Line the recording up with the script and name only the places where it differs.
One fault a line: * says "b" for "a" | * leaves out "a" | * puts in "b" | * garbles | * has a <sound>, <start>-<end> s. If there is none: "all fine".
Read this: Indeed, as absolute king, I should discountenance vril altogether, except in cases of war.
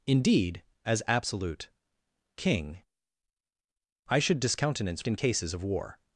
* leaves out "vril altogether except"